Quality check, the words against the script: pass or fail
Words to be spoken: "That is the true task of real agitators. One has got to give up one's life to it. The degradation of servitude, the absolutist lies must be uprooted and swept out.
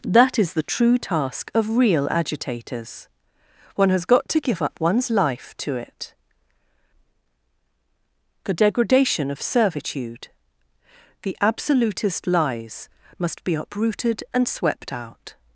pass